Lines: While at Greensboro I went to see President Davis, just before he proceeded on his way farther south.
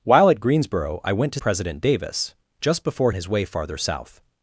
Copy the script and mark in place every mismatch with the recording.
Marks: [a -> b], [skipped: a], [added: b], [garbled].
While at Greensboro I went to [skipped: see] President Davis, just before [skipped: he proceeded on] his way farther south.